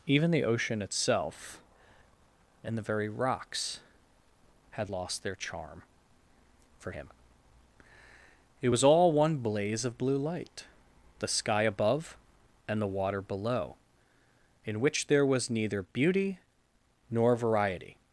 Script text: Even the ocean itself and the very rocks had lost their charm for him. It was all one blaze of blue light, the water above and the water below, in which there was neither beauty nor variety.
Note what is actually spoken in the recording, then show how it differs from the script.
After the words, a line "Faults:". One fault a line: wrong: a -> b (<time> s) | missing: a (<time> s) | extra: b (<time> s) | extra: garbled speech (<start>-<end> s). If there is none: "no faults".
Even the ocean itself and the very rocks had lost their charm for him. It was all one blaze of blue light, the sky above and the water below, in which there was neither beauty nor variety.
Faults:
wrong: water -> sky (11.3 s)